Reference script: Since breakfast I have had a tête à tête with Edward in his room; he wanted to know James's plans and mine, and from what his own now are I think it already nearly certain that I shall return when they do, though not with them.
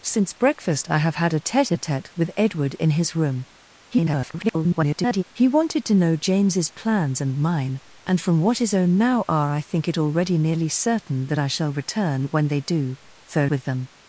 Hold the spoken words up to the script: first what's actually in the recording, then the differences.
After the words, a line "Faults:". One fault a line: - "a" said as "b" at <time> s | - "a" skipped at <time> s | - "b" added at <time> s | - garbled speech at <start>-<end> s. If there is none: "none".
Since breakfast I have had a tête à tête with Edward in his room; [garbled] he wanted to know James's plans and mine, and from what his own now are I think it already nearly certain that I shall return when they do, though with them.
Faults:
- garbled speech at 3.9-5.2 s
- "not" skipped at 13.5 s